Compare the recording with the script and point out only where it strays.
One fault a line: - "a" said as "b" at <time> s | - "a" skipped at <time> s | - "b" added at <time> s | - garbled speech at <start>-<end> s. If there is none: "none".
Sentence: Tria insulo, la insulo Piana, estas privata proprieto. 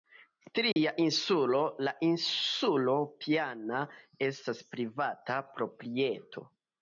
none